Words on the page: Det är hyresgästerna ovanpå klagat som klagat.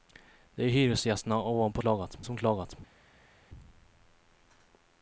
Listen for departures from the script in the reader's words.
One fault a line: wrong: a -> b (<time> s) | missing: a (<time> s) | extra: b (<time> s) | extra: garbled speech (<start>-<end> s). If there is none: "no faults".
no faults